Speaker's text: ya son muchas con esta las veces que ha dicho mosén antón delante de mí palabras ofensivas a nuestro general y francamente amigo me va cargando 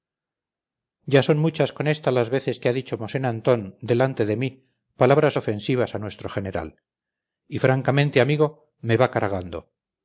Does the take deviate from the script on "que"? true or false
false